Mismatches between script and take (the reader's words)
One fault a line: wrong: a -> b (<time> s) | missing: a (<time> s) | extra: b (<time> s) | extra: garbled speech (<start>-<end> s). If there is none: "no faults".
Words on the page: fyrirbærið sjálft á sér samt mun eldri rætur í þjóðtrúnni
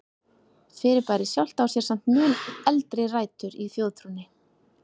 no faults